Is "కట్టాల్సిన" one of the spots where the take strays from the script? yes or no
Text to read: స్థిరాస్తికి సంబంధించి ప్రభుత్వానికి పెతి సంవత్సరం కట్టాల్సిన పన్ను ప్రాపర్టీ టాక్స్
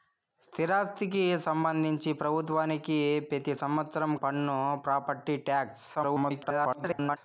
yes